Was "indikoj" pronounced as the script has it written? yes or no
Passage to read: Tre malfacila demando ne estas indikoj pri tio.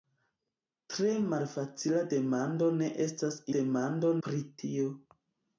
no